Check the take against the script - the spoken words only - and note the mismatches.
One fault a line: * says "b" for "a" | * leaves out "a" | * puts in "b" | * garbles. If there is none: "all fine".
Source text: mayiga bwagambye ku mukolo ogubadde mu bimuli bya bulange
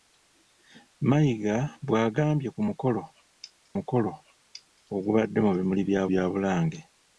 * puts in "mukolo"
* puts in "bya"